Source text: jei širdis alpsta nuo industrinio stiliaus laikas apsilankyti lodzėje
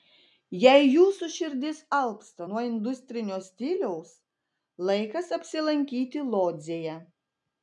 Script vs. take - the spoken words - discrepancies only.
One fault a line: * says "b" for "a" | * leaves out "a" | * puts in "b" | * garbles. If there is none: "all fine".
* puts in "jūsų"